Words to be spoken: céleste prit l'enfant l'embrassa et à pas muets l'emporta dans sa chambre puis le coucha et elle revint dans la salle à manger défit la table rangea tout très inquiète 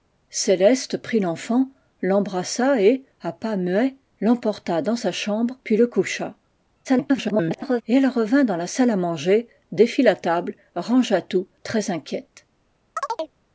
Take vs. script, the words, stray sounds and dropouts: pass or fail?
fail